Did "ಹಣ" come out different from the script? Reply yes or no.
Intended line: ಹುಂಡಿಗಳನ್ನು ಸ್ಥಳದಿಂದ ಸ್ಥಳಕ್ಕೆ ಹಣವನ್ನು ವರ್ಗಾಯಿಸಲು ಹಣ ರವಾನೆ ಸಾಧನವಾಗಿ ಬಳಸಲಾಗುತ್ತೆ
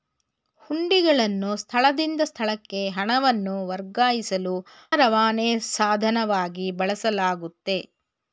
yes